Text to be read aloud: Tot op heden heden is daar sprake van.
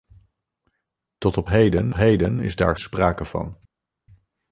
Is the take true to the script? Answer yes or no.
yes